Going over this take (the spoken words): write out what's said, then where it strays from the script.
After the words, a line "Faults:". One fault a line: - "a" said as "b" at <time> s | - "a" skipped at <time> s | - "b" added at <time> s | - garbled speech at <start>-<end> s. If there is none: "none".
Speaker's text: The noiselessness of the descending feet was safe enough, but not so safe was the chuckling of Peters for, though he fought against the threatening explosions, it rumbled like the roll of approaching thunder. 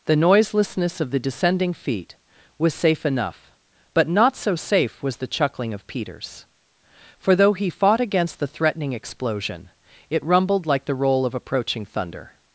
The noiselessness of the descending feet was safe enough, but not so safe was the chuckling of Peters for, though he fought against the threatening explosion, it rumbled like the roll of approaching thunder.
Faults:
- "explosions" said as "explosion" at 8.9 s